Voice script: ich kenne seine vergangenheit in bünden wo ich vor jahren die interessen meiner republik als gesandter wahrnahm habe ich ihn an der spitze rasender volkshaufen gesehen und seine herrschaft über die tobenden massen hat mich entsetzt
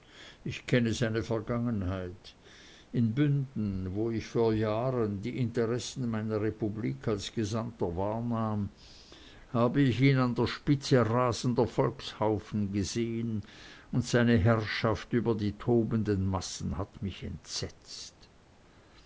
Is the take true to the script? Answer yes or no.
yes